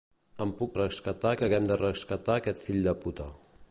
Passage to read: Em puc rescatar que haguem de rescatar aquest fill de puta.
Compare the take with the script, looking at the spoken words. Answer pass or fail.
pass